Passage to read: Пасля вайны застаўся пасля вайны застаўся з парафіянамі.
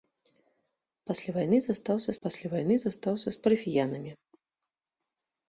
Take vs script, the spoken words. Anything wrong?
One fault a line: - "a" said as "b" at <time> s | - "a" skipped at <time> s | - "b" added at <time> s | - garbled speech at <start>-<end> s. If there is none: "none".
none